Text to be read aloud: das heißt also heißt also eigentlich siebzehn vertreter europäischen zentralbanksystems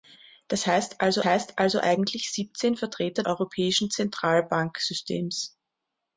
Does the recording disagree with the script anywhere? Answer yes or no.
no